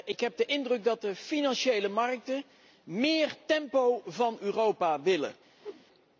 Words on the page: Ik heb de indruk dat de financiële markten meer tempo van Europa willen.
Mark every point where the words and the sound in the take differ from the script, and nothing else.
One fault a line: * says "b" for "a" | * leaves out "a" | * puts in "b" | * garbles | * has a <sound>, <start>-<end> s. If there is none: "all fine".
* has a whoosh, 5.6-5.8 s